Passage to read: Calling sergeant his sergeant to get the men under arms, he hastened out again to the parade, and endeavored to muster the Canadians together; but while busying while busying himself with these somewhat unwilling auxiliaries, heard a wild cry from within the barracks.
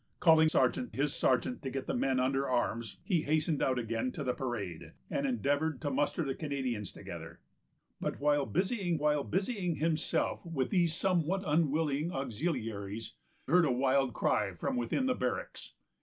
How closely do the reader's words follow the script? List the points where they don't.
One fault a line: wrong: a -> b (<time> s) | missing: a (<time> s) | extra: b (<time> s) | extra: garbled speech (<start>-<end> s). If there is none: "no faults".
no faults